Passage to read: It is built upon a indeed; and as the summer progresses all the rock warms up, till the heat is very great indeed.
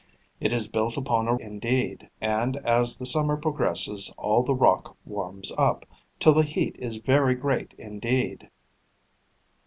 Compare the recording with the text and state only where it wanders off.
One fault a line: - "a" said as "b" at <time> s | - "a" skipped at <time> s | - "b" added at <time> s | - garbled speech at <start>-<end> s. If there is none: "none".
none